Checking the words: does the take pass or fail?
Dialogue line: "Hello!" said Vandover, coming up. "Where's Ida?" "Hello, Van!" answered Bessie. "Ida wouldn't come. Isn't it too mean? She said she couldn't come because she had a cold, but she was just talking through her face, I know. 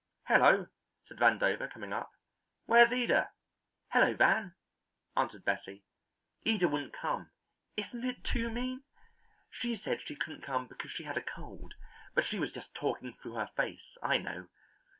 pass